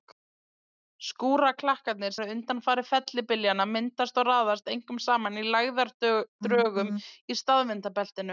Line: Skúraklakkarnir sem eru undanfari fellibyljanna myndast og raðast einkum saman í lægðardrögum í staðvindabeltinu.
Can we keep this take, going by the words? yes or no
no